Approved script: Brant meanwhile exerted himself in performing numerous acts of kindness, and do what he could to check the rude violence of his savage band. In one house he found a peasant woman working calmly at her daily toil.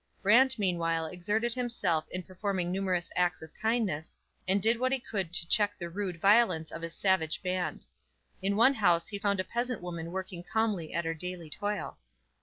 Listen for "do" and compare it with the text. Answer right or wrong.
wrong